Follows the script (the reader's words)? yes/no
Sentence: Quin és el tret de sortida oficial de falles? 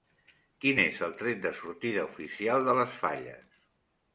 no